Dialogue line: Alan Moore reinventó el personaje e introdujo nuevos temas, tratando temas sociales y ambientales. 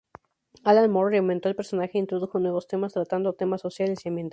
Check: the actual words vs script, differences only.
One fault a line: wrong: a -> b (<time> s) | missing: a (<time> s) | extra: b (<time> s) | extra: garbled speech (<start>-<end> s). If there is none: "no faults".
no faults